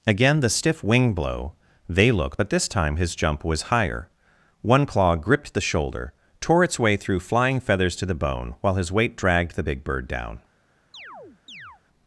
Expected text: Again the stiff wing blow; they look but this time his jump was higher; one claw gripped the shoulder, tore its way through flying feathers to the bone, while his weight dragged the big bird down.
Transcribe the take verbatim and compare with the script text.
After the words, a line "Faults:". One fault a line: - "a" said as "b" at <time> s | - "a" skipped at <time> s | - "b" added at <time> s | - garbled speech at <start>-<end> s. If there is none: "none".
Again the stiff wing blow; they look but this time his jump was higher; one claw gripped the shoulder, tore its way through flying feathers to the bone, while his weight dragged the big bird down.
Faults:
none